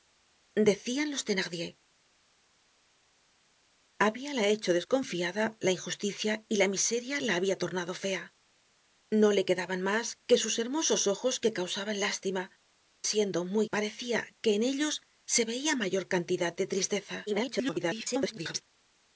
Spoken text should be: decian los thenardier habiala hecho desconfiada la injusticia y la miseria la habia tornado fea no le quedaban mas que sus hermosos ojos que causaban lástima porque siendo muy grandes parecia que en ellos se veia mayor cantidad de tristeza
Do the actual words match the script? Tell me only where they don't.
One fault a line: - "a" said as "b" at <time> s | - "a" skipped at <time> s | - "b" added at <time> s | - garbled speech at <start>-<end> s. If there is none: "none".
- "porque" skipped at 12.4 s
- "grandes" skipped at 13.7 s
- garbled speech at 17.3-18.6 s